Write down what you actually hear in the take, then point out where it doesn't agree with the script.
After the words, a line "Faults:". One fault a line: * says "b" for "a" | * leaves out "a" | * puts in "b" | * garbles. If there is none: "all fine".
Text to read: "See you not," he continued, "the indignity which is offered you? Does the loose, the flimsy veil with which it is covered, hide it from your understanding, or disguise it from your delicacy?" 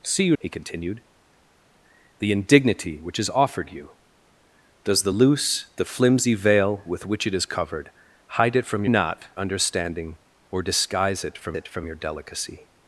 "See you," he continued, "the indignity which is offered you? Does the loose, the flimsy veil with which it is covered, hide it from not understanding, or disguise it from it from your delicacy?"
Faults:
* leaves out "not"
* says "not" for "your"
* puts in "it from"